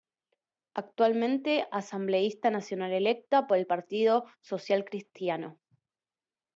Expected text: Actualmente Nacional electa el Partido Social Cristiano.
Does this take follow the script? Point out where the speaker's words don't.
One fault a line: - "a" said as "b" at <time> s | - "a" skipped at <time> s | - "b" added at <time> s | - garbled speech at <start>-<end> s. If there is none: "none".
- "Asambleísta" added at 1.7 s
- "por" added at 3.5 s